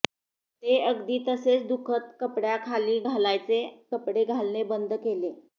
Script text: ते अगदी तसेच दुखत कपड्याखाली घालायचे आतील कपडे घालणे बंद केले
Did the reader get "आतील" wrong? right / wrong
wrong